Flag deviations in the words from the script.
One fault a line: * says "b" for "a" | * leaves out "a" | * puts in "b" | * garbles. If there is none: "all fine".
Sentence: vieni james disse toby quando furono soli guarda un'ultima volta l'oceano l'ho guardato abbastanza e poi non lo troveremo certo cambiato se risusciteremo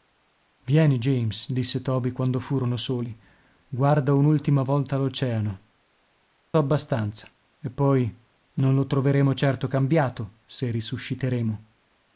* leaves out "l'ho guardato"